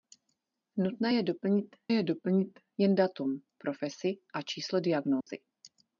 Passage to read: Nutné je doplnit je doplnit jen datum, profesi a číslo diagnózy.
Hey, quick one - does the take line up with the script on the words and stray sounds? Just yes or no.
no